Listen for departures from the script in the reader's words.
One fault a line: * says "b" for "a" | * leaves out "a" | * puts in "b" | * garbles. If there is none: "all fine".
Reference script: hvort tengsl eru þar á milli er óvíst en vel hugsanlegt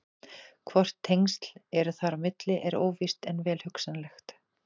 all fine